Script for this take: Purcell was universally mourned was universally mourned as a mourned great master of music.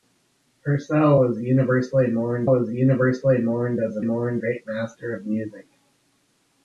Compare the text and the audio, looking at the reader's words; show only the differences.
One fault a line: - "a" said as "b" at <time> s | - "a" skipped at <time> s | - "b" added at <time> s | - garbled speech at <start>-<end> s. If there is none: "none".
none